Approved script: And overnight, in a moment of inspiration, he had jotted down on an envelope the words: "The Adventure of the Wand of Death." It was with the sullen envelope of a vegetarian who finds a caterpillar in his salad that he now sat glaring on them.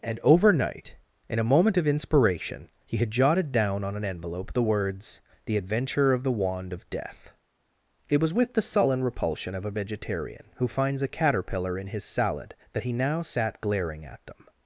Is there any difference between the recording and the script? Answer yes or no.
yes